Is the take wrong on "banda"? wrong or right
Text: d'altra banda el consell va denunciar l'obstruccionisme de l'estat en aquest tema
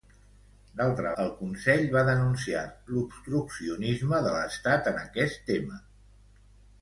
wrong